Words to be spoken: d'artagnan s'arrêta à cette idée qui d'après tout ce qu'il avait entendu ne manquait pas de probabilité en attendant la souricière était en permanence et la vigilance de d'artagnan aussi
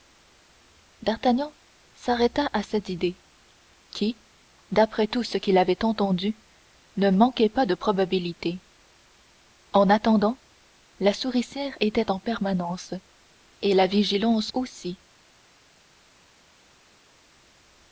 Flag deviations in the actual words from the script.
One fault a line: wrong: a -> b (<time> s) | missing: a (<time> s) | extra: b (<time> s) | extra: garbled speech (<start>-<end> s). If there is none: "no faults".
missing: de d'artagnan (14.5 s)